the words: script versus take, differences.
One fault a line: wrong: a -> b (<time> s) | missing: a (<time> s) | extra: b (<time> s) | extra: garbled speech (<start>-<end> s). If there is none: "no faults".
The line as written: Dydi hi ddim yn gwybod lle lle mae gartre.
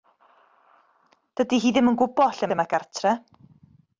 no faults